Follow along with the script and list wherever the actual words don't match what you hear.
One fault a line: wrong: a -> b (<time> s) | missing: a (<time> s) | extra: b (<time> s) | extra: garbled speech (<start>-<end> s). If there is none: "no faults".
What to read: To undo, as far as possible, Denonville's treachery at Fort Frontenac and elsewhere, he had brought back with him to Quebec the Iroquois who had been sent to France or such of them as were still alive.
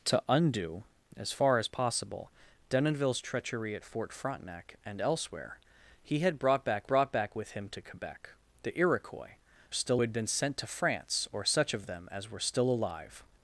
extra: brought back (6.9 s)
wrong: who -> still (9.7 s)